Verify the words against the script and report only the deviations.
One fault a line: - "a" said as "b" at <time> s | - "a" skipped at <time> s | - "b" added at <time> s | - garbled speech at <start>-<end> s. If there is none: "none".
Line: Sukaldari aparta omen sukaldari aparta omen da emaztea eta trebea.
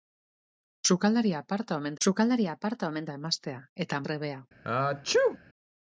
none